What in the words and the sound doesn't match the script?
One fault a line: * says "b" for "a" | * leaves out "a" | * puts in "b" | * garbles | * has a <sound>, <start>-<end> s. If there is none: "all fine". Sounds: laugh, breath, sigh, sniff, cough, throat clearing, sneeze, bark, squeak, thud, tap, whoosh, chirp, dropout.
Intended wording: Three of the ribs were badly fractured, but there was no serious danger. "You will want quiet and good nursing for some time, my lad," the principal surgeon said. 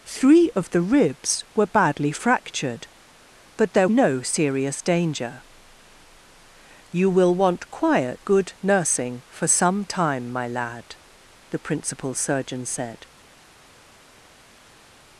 * leaves out "was"
* leaves out "and"